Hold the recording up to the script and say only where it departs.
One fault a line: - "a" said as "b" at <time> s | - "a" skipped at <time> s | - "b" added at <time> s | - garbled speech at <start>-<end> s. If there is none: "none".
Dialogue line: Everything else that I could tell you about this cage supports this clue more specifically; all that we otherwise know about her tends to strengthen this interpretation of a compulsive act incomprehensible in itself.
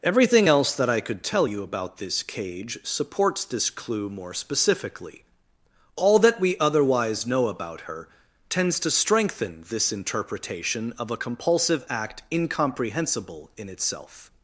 none